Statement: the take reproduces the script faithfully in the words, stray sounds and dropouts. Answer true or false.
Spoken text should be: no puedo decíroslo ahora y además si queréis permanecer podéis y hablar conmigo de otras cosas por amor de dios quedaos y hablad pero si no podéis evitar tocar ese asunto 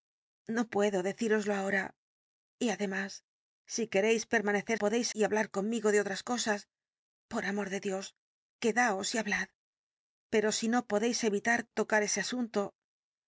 true